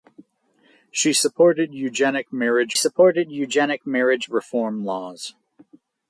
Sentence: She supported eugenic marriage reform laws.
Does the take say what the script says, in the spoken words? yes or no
no